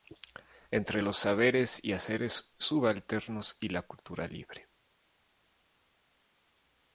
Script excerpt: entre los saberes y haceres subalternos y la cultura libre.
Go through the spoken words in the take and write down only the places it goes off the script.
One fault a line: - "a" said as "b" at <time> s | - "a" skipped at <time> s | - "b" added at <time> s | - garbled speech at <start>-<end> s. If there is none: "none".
none